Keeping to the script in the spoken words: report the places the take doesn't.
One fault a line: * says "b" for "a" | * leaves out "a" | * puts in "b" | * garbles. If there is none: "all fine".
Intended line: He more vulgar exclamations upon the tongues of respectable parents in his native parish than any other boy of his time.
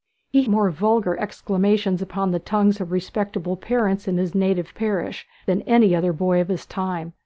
all fine